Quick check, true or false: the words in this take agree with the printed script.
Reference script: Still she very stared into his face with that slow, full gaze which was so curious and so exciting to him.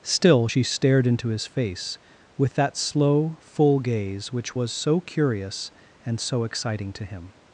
false